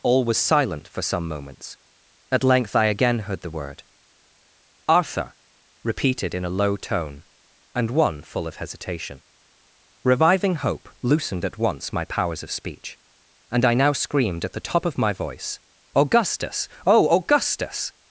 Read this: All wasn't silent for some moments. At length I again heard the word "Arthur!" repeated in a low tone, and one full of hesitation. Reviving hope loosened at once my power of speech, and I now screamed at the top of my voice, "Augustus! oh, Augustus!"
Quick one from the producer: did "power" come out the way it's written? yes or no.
no